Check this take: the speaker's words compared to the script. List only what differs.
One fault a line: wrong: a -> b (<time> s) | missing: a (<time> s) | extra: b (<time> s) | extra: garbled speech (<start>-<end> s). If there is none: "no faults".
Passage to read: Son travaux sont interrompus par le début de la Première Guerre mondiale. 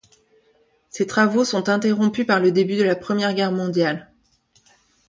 wrong: Son -> Ses (0.9 s)